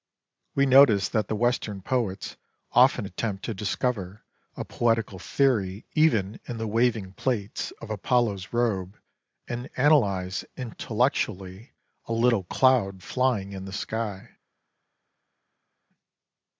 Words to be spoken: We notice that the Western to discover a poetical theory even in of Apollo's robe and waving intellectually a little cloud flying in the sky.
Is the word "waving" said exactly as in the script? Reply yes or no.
no